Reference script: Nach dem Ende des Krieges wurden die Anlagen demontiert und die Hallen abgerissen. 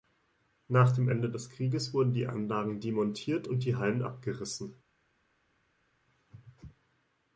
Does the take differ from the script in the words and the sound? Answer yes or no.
no